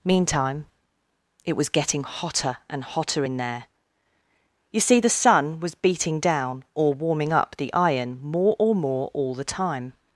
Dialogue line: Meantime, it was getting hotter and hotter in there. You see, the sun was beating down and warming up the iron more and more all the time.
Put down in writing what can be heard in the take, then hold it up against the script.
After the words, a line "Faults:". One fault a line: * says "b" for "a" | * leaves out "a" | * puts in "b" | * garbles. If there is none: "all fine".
Meantime, it was getting hotter and hotter in there. You see, the sun was beating down or warming up the iron more or more all the time.
Faults:
* says "or" for "and"
* says "or" for "and"